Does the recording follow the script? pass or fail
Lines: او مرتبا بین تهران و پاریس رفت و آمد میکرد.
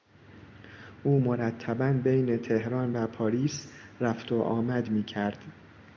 pass